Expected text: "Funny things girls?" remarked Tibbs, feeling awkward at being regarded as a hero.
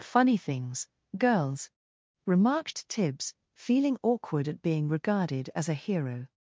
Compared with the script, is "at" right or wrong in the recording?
right